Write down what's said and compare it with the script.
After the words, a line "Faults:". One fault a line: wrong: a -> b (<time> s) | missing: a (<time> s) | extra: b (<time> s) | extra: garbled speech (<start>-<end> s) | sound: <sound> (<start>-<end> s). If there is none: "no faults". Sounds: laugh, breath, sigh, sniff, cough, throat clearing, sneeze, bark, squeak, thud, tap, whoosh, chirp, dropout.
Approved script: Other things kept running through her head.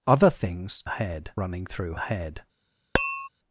Other things head running through head.
Faults:
wrong: kept -> head (0.9 s)
missing: her (2.0 s)
sound: tap (2.9-3.3 s)